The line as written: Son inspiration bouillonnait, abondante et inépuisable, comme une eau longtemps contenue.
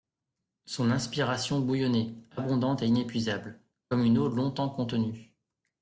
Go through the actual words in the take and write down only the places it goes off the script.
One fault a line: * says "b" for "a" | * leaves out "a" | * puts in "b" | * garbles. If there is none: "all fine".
all fine